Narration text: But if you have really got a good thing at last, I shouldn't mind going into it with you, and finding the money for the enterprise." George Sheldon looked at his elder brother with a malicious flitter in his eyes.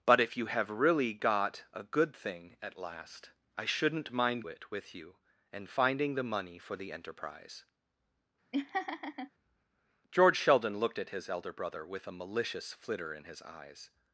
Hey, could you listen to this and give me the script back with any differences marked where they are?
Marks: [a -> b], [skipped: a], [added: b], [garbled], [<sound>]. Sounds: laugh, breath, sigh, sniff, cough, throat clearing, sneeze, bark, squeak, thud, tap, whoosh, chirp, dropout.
But if you have really got a good thing at last, I shouldn't mind [skipped: going into] it with you, and finding the money for the enterprise." [laugh] George Sheldon looked at his elder brother with a malicious flitter in his eyes.